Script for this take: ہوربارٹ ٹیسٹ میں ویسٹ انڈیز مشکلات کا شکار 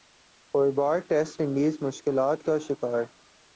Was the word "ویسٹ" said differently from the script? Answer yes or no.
yes